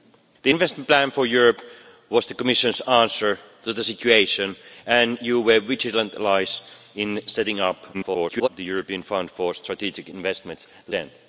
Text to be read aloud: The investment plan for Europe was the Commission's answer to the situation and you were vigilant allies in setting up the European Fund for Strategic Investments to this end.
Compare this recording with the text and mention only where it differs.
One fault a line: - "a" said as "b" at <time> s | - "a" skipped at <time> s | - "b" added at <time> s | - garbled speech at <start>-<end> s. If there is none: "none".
- garbled speech at 7.9-8.5 s
- "this" skipped at 10.9 s